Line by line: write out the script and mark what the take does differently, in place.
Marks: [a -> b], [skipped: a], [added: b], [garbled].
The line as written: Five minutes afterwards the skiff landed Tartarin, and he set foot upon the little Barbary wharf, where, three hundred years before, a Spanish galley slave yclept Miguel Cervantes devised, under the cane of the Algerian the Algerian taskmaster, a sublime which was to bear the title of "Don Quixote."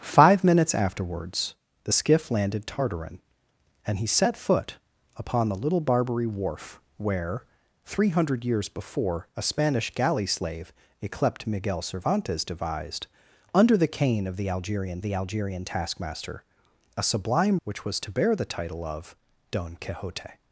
Five minutes afterwards the skiff landed Tartarin, and he set foot upon the little Barbary wharf, where, three hundred years before, a Spanish galley slave yclept Miguel Cervantes devised, under the cane of the Algerian the Algerian taskmaster, a sublime which was to bear the title of "Don Quixote."